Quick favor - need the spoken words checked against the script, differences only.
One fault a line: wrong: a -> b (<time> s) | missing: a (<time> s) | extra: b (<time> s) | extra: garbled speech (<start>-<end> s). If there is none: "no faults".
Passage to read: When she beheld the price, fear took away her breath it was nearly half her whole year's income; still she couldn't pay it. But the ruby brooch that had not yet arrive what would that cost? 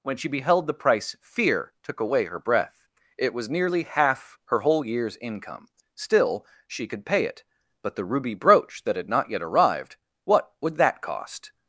wrong: couldn't -> could (6.9 s)
wrong: arrive -> arrived (9.4 s)